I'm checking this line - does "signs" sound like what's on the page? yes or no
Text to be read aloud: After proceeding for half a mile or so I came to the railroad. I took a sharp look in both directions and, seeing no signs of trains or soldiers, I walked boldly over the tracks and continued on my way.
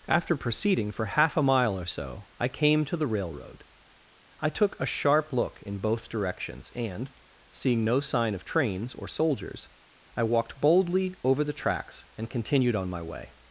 no